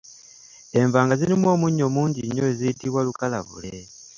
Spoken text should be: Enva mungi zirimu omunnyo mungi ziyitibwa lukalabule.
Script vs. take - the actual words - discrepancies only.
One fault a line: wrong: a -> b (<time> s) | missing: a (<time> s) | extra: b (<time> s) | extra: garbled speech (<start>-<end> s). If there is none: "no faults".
wrong: mungi -> nga (1.0 s)
extra: nnyo (2.2 s)